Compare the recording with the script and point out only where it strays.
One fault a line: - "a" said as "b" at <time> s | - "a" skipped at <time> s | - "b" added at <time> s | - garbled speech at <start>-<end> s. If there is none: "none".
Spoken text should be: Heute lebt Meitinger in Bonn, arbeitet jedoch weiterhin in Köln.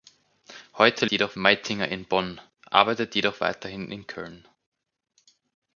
- "lebt" said as "jedoch" at 1.1 s